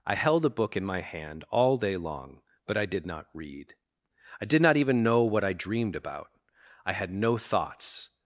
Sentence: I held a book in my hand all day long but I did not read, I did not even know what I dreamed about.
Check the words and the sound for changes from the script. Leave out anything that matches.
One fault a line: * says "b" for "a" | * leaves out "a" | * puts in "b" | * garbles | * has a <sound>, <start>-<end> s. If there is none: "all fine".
* puts in "I had no thoughts"